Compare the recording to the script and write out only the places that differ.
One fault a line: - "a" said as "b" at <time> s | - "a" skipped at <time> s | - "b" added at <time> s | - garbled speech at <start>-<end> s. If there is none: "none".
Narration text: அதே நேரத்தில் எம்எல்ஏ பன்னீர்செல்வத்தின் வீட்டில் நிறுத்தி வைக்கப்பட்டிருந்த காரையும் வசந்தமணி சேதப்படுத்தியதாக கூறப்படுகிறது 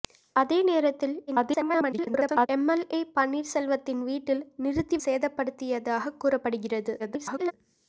- garbled speech at 1.3-2.5 s
- "வைக்கப்பட்டிருந்த காரையும் வசந்தமணி" skipped at 5.0 s
- garbled speech at 7.0-7.5 s